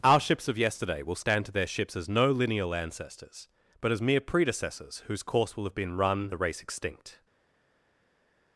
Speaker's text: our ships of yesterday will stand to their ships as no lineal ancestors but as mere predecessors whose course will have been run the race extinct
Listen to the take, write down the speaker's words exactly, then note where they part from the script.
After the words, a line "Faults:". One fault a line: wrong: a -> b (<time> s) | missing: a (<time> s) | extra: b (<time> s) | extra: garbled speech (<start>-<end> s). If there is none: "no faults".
our ships of yesterday will stand to their ships as no lineal ancestors but as mere predecessors whose course will have been run the race extinct
Faults:
no faults